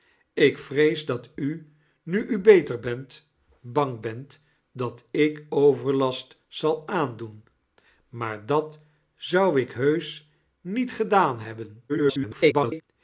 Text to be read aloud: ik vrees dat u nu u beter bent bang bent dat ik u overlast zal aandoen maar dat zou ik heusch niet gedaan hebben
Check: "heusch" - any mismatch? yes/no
no